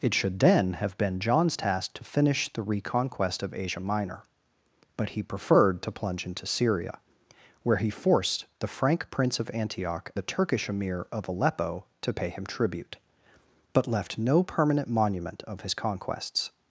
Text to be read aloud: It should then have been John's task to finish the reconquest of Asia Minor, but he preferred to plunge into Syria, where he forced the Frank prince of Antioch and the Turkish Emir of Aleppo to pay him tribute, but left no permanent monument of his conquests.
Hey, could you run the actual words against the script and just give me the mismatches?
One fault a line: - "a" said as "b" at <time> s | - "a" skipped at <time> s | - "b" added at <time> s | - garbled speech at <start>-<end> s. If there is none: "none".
- "and" skipped at 10.1 s